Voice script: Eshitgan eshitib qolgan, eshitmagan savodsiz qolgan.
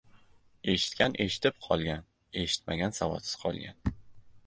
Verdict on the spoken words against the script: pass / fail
pass